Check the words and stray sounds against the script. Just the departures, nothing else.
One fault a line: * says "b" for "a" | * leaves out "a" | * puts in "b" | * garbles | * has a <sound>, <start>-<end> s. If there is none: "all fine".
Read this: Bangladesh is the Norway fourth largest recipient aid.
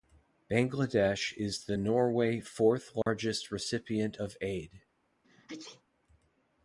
* has a dropout, 3.0-3.1 s
* puts in "of"
* has a sneeze, 5.2-5.8 s